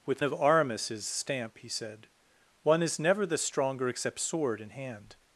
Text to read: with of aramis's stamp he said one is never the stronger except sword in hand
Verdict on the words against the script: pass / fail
pass